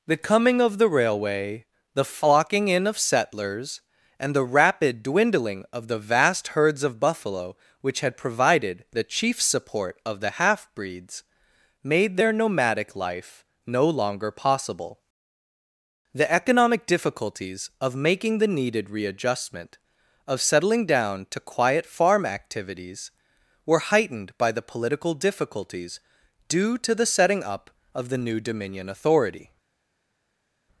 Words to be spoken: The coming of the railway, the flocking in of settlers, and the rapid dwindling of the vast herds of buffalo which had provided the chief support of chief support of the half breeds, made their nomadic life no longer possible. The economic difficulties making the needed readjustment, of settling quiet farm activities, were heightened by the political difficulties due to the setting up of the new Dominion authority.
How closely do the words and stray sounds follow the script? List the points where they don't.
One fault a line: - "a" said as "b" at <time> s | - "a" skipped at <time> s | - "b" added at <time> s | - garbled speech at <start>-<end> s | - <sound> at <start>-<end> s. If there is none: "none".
- "chief support of" skipped at 10.2 s
- "of" added at 17.8 s
- "down to" added at 20.9 s